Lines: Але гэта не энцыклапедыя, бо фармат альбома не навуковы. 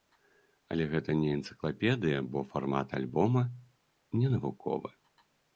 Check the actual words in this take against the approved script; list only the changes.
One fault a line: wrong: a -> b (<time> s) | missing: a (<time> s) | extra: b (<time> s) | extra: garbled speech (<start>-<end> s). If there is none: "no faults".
no faults